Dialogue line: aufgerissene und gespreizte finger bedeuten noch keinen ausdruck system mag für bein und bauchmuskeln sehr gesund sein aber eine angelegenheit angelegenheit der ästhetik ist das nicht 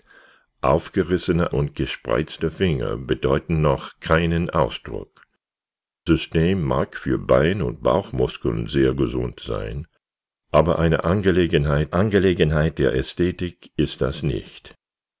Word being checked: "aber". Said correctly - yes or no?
yes